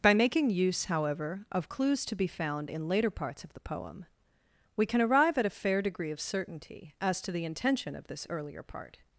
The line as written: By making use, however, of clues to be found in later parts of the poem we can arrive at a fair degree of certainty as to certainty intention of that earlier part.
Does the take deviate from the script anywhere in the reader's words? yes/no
yes